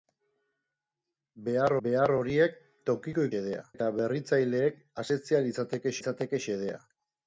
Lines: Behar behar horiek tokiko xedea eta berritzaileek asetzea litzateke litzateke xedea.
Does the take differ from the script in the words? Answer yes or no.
no